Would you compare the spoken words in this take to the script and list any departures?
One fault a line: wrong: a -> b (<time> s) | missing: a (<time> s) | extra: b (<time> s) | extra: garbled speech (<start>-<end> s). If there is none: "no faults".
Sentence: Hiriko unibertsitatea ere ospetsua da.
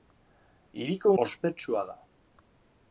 missing: unibertsitatea ere (1.1 s)